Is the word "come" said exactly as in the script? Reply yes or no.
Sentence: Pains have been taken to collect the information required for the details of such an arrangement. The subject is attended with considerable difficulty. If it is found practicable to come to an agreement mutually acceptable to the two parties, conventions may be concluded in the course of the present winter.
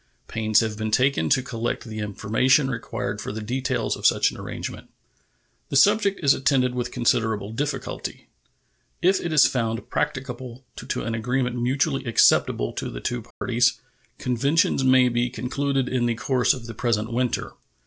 no